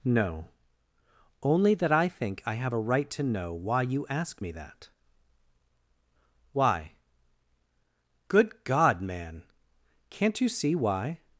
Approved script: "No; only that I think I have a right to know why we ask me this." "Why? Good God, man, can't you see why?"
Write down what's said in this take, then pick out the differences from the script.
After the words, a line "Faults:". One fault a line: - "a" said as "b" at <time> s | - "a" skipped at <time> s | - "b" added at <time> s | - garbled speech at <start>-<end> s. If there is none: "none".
"No; only that I think I have a right to know why you ask me that." "Why? Good God, man, can't you see why?"
Faults:
- "we" said as "you" at 3.8 s
- "this" said as "that" at 4.5 s